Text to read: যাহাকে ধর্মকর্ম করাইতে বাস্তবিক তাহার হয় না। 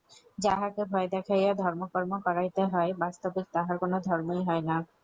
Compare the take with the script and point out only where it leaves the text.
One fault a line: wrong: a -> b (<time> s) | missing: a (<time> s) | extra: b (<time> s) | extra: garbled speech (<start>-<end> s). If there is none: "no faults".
extra: ভয় দেখাইয়া (0.9 s)
extra: হয় (2.7 s)
extra: কোন ধর্মই (3.8 s)